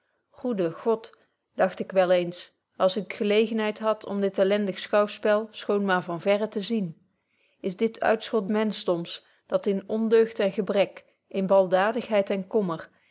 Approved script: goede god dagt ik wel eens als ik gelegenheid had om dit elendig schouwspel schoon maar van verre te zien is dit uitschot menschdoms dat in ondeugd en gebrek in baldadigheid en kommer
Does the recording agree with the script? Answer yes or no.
yes